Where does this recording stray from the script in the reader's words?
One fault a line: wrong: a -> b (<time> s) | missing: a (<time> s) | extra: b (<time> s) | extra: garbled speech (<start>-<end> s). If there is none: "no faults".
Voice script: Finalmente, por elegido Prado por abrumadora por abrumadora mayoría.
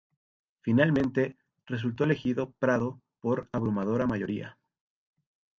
wrong: por -> resultó (1.7 s)
missing: por abrumadora (4.1 s)